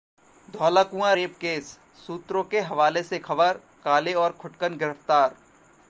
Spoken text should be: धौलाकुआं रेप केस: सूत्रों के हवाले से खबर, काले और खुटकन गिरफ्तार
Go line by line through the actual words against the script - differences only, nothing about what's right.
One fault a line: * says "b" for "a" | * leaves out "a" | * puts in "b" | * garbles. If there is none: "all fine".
all fine